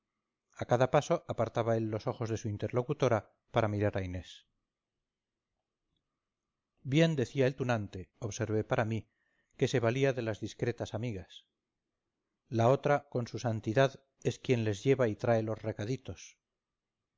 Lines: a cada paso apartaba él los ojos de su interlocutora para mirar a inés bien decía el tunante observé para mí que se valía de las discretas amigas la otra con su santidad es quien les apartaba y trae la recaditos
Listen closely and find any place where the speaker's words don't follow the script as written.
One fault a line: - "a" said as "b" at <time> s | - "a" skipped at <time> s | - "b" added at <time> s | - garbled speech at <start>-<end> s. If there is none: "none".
- "apartaba" said as "lleva" at 14.8 s
- "la" said as "los" at 15.4 s